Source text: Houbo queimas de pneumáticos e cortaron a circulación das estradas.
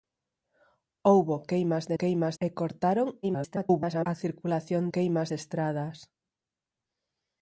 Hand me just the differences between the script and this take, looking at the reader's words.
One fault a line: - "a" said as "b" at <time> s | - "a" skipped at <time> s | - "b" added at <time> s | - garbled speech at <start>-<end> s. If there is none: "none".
- "pneumáticos" said as "queimas" at 2.0 s
- garbled speech at 3.2-4.1 s
- "das" said as "queimas" at 4.9 s